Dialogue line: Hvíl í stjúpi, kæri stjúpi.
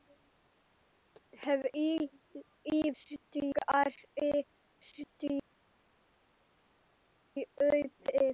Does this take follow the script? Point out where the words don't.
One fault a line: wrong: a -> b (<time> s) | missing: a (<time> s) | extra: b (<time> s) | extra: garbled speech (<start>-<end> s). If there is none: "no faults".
no faults